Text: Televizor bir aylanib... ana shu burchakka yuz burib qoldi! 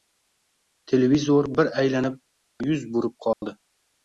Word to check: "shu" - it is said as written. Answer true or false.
false